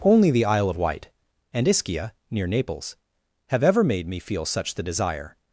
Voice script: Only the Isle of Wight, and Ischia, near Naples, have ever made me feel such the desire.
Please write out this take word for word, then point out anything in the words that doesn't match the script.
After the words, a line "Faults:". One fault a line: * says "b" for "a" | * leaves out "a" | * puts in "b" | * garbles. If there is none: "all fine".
Only the Isle of Wight, and Ischia, near Naples, have ever made me feel such the desire.
Faults:
all fine